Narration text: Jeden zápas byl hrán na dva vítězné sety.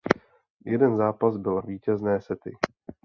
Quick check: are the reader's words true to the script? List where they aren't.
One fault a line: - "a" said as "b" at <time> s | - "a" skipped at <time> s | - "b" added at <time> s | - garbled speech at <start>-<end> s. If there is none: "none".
- "hrán na dva" skipped at 1.6 s